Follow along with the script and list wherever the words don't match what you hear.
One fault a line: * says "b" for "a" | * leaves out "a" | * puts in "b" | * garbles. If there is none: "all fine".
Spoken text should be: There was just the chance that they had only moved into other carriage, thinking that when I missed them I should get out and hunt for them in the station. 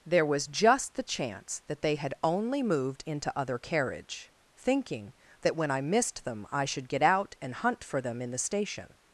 all fine